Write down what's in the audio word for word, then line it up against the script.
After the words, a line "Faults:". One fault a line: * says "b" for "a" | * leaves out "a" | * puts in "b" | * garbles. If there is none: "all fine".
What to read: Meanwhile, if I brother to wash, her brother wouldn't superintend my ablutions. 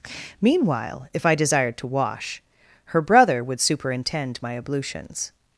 Meanwhile, if I desired to wash, her brother would superintend my ablutions.
Faults:
* says "desired" for "brother"
* says "would" for "wouldn't"